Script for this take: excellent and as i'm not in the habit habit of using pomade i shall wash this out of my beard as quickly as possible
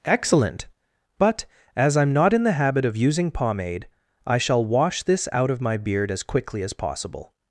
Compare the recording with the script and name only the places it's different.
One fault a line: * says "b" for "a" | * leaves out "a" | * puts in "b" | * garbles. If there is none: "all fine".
* says "but" for "and"
* leaves out "habit"